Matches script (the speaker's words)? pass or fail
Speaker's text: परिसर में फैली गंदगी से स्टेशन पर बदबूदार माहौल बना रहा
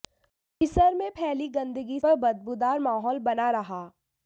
fail